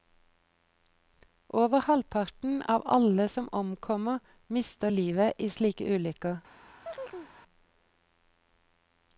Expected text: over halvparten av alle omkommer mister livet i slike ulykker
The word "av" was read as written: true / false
true